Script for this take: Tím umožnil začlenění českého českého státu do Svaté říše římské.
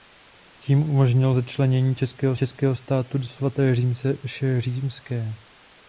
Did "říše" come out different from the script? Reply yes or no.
no